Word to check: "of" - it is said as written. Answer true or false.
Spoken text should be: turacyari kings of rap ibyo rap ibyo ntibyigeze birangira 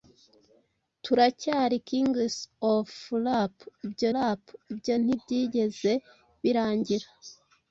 true